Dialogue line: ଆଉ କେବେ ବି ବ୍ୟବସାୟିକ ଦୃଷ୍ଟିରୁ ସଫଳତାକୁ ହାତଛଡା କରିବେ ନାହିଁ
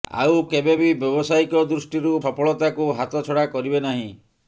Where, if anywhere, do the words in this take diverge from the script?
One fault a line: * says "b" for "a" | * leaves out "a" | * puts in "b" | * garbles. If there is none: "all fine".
all fine